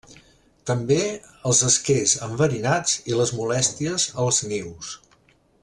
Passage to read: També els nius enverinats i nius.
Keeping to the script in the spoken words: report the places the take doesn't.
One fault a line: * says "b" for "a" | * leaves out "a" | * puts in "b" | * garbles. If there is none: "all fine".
* says "esquers" for "nius"
* puts in "les molèsties als"